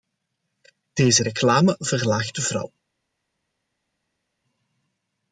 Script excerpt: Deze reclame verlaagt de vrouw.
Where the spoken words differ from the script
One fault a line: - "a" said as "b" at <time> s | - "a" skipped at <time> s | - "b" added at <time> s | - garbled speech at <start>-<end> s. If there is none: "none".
none